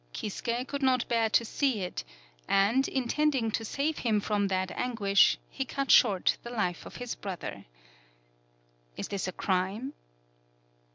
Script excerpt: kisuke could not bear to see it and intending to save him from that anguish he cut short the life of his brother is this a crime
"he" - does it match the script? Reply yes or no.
yes